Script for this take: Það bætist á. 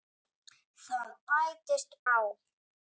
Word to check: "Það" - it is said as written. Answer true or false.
true